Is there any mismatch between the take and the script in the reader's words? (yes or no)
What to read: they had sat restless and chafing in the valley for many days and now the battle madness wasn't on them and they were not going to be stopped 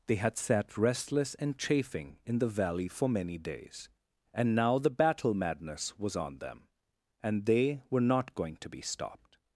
yes